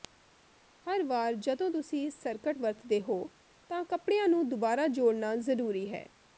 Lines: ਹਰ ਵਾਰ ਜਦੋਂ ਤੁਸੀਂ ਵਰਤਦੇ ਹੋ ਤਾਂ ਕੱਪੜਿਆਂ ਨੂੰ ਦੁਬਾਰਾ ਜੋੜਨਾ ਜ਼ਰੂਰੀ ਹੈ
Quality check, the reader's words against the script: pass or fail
fail